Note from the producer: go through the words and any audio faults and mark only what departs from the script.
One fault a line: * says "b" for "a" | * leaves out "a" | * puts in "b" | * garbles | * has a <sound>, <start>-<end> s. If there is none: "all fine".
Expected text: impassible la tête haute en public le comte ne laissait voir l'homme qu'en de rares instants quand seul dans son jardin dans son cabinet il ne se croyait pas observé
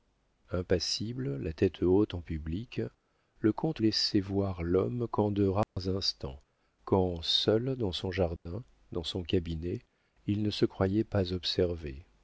* leaves out "ne"
* has a dropout, 5.6-5.8 s
* has a dropout, 8.4-8.5 s